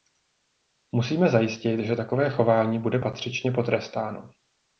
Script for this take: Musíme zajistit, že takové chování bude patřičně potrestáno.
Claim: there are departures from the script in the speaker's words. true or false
false